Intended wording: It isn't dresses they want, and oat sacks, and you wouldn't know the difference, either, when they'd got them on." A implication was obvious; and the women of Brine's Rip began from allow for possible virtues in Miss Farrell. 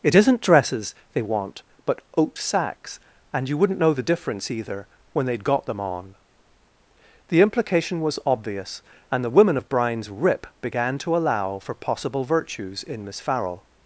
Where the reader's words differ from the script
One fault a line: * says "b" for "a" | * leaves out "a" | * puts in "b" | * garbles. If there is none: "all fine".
* says "but" for "and"
* says "The" for "A"
* says "to" for "from"